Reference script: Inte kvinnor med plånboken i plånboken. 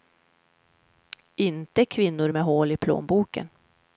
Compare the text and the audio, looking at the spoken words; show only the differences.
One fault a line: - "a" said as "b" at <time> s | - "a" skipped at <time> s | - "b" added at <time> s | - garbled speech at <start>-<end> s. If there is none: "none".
- "plånboken" said as "hål" at 2.4 s